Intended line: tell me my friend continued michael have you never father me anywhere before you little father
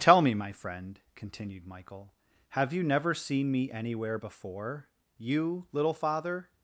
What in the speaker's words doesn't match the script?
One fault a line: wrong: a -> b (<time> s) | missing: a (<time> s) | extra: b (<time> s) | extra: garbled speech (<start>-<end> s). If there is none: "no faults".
wrong: father -> seen (3.1 s)